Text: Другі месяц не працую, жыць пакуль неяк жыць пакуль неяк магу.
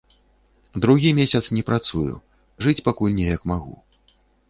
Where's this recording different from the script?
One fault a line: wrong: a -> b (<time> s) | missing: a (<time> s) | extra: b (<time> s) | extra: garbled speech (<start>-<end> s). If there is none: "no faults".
missing: жыць пакуль неяк (3.4 s)